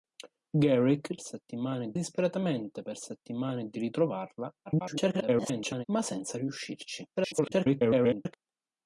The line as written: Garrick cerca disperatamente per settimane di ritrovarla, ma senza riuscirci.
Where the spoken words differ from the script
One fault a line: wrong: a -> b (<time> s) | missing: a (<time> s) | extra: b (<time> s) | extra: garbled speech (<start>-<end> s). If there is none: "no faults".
wrong: cerca -> settimane (1.2 s)
extra: garbled speech (4.7-5.9 s)
extra: garbled speech (7.2-8.3 s)